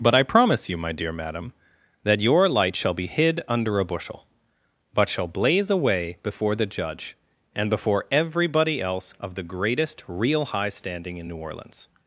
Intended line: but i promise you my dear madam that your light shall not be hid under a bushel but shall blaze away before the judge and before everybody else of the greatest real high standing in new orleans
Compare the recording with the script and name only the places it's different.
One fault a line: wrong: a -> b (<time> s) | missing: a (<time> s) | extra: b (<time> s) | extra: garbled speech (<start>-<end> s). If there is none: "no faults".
missing: not (3.0 s)